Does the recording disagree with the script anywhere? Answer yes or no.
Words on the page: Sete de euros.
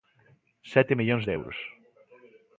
yes